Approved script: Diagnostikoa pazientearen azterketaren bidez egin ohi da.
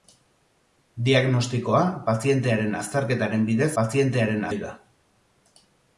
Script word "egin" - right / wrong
wrong